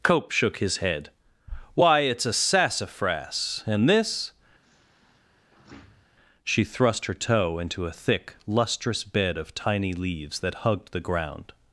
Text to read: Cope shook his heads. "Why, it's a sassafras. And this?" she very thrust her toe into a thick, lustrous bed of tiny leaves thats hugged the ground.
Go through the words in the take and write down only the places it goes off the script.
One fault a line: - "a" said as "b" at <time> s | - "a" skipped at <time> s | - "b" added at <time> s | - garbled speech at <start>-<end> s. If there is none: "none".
- "heads" said as "head" at 0.8 s
- "very" skipped at 6.6 s
- "thats" said as "that" at 10.4 s